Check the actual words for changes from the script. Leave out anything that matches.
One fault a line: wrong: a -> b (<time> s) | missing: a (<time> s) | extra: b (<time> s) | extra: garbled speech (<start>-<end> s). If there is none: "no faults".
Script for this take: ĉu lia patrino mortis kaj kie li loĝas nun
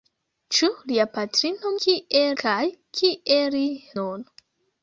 wrong: mortis -> kie (1.9 s)
missing: loĝas (3.7 s)